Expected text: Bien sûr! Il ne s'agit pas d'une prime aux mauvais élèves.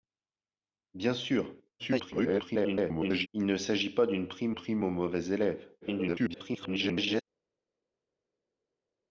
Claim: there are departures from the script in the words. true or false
true